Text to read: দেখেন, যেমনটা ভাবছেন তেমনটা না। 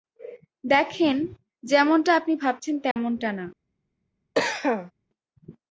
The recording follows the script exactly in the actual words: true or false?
false